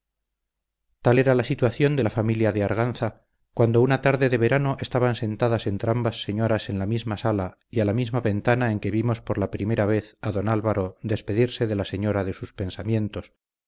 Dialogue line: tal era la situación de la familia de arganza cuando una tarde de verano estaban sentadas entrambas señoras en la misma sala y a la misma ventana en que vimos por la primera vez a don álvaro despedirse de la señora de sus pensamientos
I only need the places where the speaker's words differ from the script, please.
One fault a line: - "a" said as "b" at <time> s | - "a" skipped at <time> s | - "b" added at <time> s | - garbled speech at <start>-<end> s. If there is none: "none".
none